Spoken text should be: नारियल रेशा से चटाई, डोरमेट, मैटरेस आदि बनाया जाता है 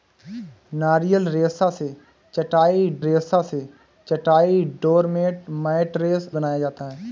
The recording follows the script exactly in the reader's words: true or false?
false